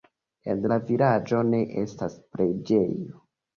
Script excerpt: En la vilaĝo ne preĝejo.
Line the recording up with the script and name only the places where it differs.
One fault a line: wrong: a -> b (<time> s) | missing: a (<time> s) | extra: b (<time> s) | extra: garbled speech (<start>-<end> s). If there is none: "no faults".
extra: estas (1.8 s)